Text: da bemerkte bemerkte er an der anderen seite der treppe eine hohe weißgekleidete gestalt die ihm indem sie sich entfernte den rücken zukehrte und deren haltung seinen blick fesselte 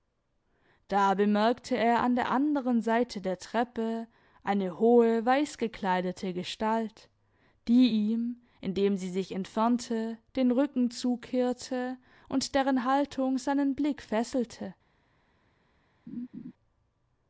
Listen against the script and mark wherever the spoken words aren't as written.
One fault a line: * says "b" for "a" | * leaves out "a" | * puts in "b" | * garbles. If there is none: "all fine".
* leaves out "bemerkte"